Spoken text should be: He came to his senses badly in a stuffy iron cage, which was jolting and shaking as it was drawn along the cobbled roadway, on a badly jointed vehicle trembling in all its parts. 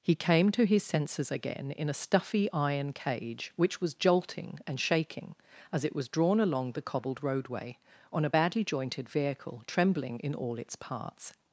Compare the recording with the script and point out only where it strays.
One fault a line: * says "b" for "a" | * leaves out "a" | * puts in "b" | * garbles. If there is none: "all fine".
* says "again" for "badly"